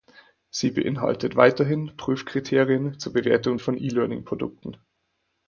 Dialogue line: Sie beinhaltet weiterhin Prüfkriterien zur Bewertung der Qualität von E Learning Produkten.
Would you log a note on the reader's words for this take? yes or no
yes